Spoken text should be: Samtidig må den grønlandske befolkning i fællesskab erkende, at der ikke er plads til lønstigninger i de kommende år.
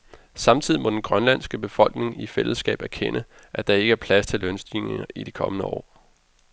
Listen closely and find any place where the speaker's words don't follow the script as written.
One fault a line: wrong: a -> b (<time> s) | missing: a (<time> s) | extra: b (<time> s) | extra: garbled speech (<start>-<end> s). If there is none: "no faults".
no faults